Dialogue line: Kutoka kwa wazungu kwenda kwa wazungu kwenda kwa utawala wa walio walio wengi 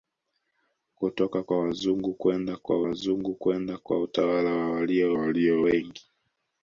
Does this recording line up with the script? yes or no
yes